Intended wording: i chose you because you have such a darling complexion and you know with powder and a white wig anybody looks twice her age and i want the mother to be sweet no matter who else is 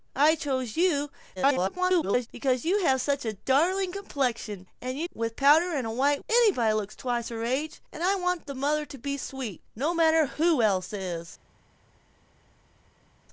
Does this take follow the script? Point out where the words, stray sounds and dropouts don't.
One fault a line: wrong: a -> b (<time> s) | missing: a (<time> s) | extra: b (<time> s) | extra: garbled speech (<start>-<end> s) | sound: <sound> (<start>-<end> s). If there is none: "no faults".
extra: garbled speech (1.4-2.3 s)
missing: know (5.1 s)
missing: wig (6.2 s)